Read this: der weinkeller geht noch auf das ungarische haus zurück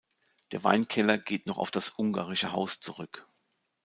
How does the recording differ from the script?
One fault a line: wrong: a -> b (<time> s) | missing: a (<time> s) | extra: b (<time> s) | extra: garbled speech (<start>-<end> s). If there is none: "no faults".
no faults